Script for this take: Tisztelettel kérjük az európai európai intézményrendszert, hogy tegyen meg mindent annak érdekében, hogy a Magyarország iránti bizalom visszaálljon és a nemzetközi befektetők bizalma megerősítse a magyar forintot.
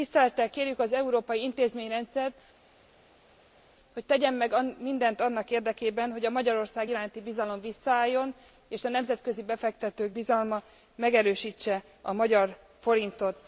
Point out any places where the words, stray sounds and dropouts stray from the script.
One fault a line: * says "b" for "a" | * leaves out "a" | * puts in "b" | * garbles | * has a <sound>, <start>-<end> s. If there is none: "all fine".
* leaves out "európai"